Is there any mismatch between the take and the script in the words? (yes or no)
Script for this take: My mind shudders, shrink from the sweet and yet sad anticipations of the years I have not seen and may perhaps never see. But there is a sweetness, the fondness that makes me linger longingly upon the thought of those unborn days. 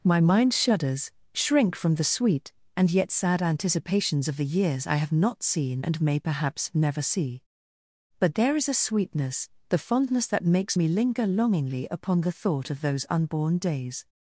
no